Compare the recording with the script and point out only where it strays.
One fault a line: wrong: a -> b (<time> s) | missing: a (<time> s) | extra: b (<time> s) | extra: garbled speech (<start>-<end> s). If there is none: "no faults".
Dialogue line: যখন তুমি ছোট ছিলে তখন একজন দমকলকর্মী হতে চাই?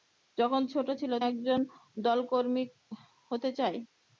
missing: তুমি (0.6 s)
missing: তখন (1.2 s)